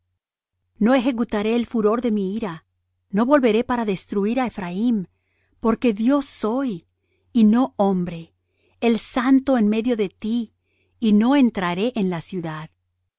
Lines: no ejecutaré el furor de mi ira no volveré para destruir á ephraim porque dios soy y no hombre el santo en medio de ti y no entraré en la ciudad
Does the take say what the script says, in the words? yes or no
yes